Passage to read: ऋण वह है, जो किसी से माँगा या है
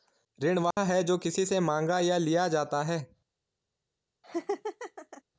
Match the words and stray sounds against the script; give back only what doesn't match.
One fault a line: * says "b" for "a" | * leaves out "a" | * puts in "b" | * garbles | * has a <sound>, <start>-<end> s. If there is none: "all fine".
* has a dropout, 0.7-0.8 s
* puts in "लिया जाता"
* has a laugh, 4.2-5.2 s